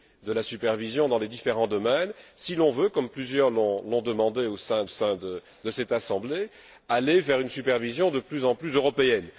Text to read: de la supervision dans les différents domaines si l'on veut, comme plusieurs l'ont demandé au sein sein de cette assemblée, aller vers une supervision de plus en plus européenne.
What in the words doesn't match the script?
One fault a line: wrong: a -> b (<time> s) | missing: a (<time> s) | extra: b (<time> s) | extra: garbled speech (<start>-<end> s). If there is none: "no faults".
no faults